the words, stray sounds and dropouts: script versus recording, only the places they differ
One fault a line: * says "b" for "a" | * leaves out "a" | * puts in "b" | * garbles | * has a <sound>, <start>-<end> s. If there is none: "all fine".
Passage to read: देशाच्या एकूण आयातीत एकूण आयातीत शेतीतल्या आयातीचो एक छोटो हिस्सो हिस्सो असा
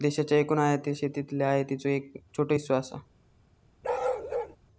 * leaves out "एकूण आयातीत"
* leaves out "हिस्सो"
* has a bark, 3.8-4.6 s